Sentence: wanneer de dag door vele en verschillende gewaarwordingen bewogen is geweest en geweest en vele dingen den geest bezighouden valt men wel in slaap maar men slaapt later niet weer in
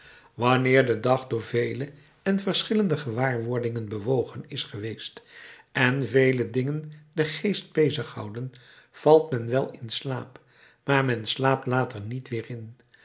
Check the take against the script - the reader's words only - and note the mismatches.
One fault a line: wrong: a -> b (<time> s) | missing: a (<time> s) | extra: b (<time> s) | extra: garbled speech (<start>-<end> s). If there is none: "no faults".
missing: geweest en (6.1 s)